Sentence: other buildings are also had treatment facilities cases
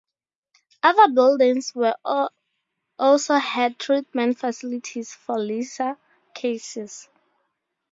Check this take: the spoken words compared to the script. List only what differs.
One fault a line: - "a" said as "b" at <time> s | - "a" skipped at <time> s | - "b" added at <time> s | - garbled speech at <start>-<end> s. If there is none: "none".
- "are" said as "were" at 1.7 s
- "for lesser" added at 5.1 s